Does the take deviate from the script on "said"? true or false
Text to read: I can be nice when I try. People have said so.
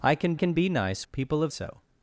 true